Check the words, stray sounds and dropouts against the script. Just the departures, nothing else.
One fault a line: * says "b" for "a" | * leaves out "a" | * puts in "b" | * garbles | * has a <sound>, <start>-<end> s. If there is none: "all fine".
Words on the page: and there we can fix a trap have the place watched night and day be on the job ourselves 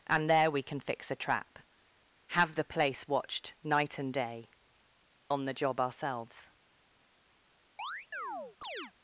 * leaves out "be"
* has a chirp, 7.8-8.9 s